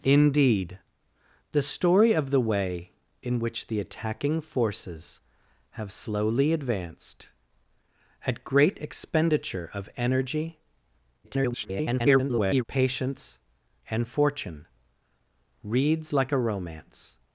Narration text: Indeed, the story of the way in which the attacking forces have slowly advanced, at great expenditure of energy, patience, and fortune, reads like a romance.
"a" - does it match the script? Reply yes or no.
yes